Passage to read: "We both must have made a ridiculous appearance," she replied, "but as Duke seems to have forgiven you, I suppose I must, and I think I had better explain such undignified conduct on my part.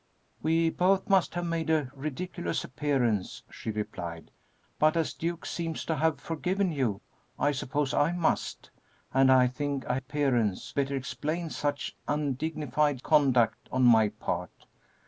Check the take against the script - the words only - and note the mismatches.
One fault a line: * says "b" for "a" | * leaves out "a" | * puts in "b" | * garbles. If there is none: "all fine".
* says "appearance" for "had"